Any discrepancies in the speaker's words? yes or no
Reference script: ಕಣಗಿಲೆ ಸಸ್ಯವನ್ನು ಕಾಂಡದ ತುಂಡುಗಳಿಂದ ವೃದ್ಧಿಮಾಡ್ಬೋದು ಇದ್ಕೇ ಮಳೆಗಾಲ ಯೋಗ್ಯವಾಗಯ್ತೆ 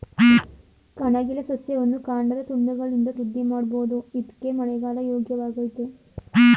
no